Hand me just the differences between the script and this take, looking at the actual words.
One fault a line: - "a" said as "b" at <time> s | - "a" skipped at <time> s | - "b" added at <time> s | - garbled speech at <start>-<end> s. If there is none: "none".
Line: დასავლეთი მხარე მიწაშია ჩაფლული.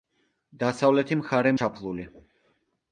- "მიწაშია" skipped at 1.5 s